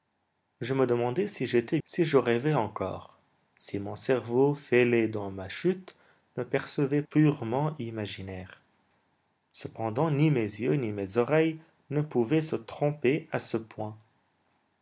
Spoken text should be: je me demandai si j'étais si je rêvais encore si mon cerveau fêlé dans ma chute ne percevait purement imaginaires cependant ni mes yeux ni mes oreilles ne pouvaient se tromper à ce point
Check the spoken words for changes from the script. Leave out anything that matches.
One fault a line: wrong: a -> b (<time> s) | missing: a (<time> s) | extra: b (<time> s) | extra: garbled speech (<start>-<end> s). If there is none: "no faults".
no faults